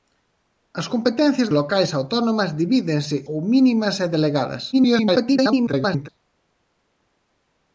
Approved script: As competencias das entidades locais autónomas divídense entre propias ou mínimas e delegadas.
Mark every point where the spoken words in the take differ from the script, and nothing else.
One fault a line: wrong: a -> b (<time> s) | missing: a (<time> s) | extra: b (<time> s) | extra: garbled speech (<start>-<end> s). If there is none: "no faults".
missing: das entidades (1.5 s)
missing: entre propias (3.2 s)
extra: garbled speech (4.7-6.1 s)